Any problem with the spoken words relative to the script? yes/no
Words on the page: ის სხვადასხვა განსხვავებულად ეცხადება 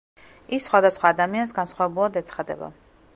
yes